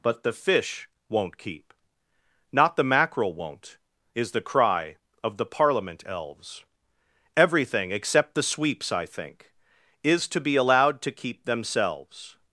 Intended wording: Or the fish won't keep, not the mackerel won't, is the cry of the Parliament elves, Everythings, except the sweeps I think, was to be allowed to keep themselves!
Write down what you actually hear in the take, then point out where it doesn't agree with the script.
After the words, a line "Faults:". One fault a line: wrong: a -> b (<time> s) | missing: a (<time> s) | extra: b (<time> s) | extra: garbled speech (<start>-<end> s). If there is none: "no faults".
But the fish won't keep, not the mackerel won't, is the cry of the Parliament elves, Everything, except the sweeps I think, is to be allowed to keep themselves!
Faults:
wrong: Or -> But (0.0 s)
wrong: Everythings -> Everything (7.4 s)
wrong: was -> is (10.0 s)